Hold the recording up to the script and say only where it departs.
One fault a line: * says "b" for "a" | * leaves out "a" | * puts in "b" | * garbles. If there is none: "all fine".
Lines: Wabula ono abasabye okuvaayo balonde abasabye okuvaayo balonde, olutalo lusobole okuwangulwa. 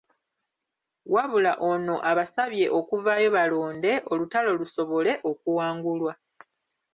* leaves out "abasabye okuvaayo balonde"